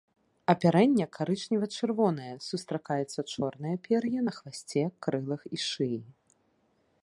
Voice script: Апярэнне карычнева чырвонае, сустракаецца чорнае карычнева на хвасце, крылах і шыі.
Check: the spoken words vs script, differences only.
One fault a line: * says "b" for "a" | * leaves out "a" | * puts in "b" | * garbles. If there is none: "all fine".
* says "пер'е" for "карычнева"